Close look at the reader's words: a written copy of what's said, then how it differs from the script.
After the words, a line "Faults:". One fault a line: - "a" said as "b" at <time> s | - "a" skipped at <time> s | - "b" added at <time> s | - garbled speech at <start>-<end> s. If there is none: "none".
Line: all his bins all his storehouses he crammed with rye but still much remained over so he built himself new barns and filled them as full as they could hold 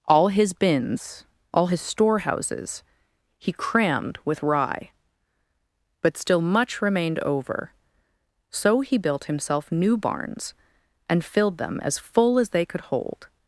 all his bins all his storehouses he crammed with rye but still much remained over so he built himself new barns and filled them as full as they could hold
Faults:
none